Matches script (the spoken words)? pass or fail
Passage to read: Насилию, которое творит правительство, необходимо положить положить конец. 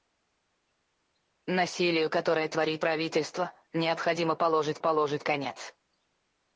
pass